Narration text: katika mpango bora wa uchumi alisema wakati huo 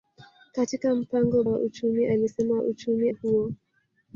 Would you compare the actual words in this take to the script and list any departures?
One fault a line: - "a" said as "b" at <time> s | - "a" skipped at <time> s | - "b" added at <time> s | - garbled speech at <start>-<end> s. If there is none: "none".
- "bora" skipped at 1.4 s
- "wakati" said as "uchumi" at 2.6 s